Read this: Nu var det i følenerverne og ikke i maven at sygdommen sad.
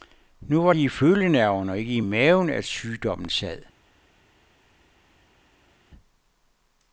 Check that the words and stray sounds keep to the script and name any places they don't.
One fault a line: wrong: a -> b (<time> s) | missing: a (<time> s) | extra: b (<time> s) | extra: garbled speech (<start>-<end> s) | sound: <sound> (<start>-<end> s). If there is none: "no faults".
no faults